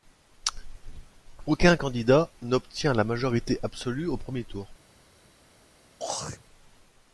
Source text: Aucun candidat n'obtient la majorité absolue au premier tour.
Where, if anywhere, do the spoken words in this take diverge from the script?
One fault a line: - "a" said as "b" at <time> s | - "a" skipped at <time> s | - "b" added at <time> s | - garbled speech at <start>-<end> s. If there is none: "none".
none